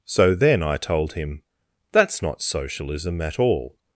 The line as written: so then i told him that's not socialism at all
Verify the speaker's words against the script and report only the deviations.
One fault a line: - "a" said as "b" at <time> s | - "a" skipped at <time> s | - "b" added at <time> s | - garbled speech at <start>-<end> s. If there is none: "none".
none